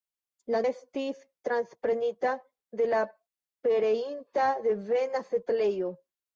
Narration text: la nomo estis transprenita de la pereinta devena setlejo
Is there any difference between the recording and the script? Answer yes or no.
yes